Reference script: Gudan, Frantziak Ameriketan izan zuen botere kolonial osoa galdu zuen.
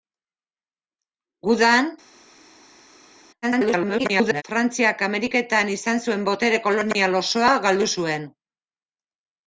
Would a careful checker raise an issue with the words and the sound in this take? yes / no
yes